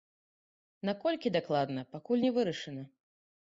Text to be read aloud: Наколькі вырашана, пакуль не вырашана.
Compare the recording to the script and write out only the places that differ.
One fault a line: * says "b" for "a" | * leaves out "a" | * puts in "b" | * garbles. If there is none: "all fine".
* says "дакладна" for "вырашана"